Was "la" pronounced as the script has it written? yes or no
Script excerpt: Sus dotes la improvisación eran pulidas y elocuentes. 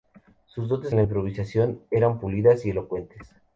yes